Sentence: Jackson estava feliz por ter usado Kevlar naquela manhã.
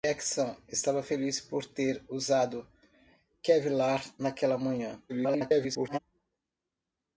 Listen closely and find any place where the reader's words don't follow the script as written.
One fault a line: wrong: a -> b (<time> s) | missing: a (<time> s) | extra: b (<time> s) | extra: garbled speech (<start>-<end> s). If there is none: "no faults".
extra: garbled speech (5.1-6.0 s)